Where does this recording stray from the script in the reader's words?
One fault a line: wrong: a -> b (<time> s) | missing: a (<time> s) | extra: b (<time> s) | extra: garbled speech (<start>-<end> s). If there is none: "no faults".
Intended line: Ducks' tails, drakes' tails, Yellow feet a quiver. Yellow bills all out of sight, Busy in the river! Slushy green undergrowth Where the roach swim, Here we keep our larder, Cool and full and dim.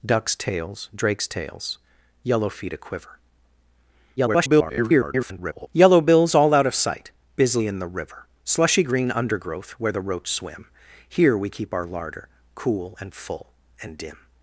extra: garbled speech (4.2-5.7 s)